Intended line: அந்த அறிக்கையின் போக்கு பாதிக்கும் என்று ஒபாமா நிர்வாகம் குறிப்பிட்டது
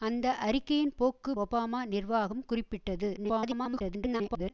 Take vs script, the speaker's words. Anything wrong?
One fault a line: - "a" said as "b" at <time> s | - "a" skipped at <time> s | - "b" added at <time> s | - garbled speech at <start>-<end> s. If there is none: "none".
- "பாதிக்கும் என்று" skipped at 1.3 s
- garbled speech at 3.2-4.5 s